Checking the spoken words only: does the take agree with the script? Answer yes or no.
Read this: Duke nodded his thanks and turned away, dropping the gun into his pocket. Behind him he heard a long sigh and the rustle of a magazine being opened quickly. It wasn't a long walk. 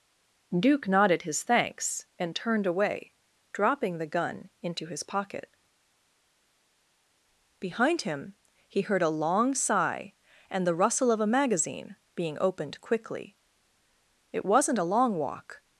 yes